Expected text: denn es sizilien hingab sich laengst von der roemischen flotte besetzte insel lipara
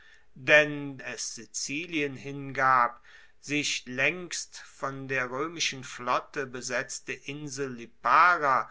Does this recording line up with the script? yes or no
yes